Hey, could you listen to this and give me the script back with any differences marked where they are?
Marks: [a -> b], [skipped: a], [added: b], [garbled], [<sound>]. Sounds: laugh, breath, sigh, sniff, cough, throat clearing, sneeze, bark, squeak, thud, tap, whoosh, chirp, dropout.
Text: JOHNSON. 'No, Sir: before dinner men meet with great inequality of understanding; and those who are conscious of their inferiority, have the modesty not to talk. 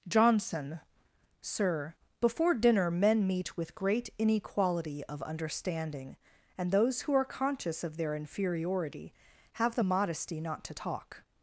JOHNSON. [skipped: 'No,] Sir: before dinner men meet with great inequality of understanding; and those who are conscious of their inferiority, have the modesty not to talk.